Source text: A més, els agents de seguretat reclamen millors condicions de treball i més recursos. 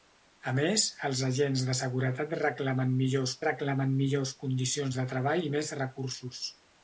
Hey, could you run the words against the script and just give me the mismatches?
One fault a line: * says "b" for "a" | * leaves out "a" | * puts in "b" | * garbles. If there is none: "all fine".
* puts in "reclamen millors"